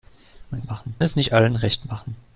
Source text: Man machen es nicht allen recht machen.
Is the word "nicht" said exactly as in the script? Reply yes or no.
yes